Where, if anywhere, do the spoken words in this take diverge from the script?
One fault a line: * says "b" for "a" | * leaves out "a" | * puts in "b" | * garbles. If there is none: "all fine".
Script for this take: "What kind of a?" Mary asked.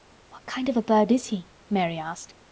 * puts in "bird is he"